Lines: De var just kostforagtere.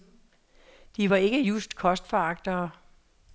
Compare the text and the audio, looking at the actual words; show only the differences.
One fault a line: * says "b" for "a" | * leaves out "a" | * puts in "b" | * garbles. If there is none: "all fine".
* puts in "ikke"